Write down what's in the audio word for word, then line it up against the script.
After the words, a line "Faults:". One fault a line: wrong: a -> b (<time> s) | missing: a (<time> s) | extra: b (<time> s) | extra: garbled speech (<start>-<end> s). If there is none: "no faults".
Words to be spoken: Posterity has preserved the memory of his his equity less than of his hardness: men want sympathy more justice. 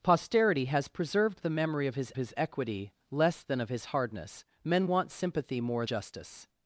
Posterity has preserved the memory of his his equity less than of his hardness: men want sympathy more justice.
Faults:
no faults